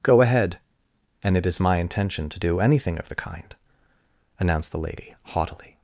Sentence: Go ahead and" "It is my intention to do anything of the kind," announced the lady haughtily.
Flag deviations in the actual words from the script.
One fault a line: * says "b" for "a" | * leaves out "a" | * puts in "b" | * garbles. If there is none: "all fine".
all fine